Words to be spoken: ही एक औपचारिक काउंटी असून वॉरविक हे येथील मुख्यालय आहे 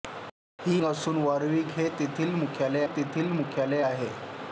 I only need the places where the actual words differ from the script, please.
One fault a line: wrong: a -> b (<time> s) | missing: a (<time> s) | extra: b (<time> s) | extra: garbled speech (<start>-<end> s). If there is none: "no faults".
missing: एक औपचारिक काउंटी (0.8 s)
extra: येथील मुख्यालय (2.8 s)